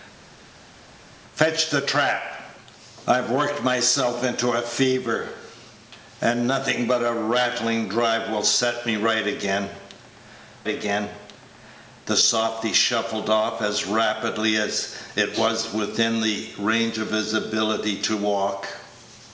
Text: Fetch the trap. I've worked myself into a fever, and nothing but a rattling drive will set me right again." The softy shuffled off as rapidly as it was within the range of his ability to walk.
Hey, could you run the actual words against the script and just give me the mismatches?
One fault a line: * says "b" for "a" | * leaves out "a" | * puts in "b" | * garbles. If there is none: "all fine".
* puts in "again"